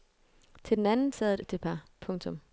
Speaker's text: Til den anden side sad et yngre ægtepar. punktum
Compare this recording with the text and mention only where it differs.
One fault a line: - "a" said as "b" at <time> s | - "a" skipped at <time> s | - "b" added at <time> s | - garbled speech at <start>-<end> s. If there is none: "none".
- "side" skipped at 1.1 s
- "yngre" skipped at 1.4 s